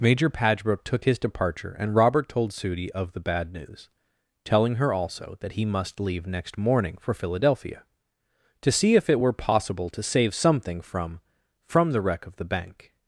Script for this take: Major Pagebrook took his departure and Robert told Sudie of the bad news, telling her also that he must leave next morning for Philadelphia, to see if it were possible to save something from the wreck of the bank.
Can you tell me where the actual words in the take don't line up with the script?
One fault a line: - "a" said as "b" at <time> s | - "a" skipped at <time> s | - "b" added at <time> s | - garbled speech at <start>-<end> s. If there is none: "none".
- "from" added at 11.6 s